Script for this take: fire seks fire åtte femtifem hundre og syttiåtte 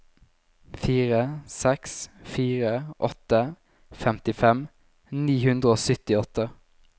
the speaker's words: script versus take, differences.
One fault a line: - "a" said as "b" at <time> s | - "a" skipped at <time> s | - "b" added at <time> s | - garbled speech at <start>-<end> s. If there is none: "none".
- "ni" added at 5.3 s